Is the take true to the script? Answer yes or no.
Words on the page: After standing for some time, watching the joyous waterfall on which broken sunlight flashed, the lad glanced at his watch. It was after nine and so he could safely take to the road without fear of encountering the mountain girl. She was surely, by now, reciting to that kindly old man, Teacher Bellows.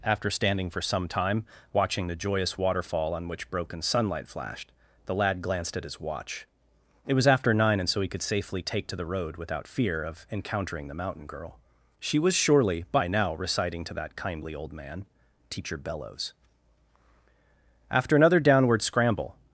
no